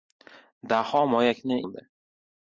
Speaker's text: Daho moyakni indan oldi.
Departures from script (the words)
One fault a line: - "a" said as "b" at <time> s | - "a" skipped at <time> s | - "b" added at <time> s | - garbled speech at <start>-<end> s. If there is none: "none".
- "indan" skipped at 1.6 s